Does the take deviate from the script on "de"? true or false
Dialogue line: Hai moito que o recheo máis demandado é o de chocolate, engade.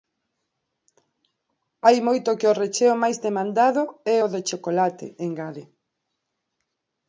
false